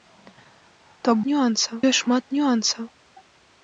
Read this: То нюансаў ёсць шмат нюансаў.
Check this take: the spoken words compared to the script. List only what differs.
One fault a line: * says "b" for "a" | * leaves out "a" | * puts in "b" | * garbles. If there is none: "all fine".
all fine